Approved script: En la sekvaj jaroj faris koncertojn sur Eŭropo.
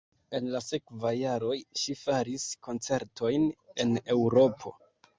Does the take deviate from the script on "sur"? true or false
true